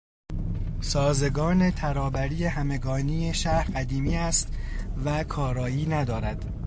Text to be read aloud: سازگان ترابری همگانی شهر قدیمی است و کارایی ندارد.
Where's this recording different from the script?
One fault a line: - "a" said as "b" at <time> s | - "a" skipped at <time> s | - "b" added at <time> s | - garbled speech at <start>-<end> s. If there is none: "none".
none